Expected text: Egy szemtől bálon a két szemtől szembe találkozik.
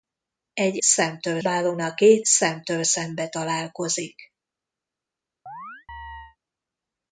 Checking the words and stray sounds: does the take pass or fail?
fail